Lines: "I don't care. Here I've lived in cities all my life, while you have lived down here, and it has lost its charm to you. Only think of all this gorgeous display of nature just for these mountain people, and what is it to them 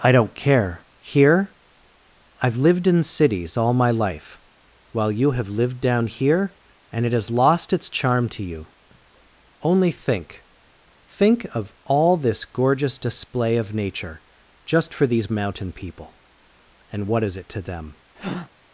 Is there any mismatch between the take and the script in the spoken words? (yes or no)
yes